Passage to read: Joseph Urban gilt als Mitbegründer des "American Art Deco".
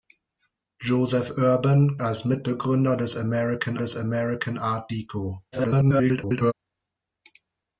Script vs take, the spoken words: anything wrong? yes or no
yes